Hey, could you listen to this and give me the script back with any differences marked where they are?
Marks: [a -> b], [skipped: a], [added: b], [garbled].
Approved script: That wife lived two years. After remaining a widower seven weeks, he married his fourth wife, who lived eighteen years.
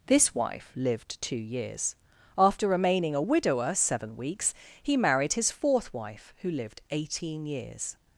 [That -> This] wife lived two years. After remaining a widower seven weeks, he married his fourth wife, who lived eighteen years.